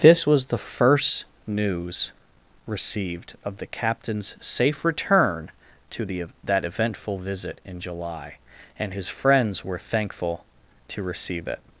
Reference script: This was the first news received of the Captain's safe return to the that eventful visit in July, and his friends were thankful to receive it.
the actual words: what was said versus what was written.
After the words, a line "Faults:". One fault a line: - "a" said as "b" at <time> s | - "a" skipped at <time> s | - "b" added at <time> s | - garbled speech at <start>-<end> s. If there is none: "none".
This was the first news received of the Captain's safe return to the that eventful visit in July, and his friends were thankful to receive it.
Faults:
none